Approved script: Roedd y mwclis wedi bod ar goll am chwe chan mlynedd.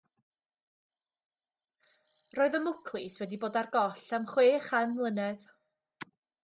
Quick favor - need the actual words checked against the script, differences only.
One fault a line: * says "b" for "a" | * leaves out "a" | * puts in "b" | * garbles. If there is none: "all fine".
all fine